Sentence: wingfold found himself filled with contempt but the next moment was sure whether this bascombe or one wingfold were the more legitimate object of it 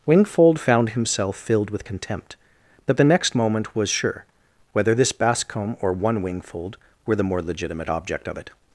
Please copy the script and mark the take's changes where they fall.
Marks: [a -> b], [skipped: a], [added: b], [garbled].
wingfold found himself filled with contempt but the next moment was sure whether this bascombe or one wingfold were the more legitimate object of it